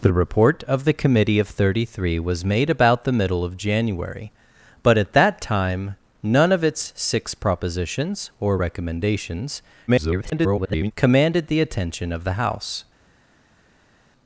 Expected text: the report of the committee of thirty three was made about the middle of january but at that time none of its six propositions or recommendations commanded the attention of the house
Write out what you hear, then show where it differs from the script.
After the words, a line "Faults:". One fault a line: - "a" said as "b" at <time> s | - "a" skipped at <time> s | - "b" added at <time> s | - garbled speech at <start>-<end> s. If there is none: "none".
the report of the committee of thirty three was made about the middle of january but at that time none of its six propositions or recommendations [garbled] commanded the attention of the house
Faults:
- garbled speech at 9.9-10.9 s